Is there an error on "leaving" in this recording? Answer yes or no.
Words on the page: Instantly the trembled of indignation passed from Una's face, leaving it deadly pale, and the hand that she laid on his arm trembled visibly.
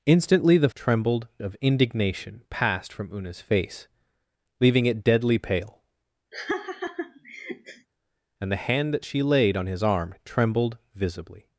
no